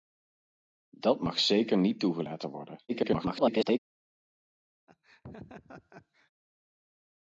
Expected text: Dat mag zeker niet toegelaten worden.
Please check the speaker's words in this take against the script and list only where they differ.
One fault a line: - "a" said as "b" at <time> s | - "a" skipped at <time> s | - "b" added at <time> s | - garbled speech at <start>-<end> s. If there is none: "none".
- garbled speech at 2.9-3.8 s